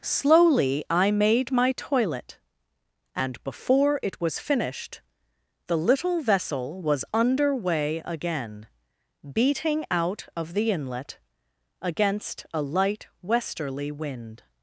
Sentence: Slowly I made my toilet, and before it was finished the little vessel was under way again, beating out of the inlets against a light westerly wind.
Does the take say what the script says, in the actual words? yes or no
no